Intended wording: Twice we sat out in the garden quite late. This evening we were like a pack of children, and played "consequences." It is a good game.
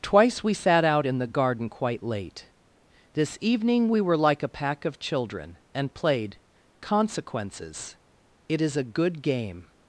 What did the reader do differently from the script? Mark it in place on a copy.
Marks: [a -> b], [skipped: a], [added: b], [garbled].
Twice we sat out in the garden quite late. This evening we were like a pack of children, and played "consequences." It is a good game.